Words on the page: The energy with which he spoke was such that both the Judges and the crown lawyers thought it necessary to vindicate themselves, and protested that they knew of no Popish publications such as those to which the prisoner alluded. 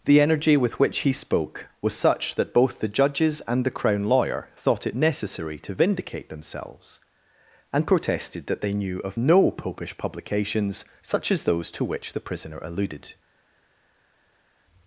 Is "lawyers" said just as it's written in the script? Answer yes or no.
no